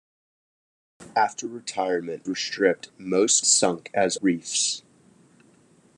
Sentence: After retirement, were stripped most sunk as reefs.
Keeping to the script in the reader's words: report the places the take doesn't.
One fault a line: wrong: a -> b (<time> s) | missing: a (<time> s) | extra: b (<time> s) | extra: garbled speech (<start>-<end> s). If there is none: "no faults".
no faults